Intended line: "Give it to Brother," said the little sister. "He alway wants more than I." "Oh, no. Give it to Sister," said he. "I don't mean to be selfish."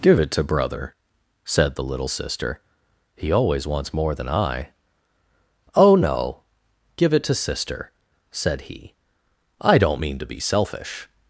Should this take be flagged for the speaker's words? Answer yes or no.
yes